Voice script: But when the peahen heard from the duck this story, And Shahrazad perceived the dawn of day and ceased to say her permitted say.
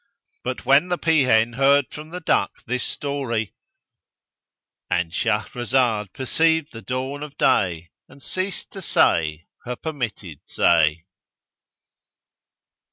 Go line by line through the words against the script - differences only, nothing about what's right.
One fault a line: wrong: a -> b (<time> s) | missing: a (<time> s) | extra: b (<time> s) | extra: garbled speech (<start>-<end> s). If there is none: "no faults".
no faults